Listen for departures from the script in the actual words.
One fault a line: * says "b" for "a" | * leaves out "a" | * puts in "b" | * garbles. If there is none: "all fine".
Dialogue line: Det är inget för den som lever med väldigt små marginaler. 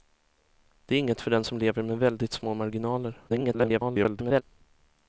* garbles